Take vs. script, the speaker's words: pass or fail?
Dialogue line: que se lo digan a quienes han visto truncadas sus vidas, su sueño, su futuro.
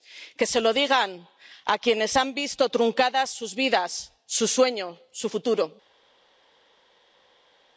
pass